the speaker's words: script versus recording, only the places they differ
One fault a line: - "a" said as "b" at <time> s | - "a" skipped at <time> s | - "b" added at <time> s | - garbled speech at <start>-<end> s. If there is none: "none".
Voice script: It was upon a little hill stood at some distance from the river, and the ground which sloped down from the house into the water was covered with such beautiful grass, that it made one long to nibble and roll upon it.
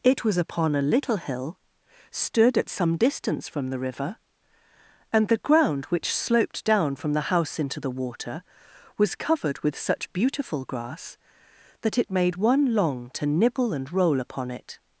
none